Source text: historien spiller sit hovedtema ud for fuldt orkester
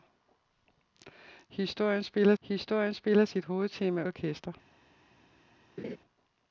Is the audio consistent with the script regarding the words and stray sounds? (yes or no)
no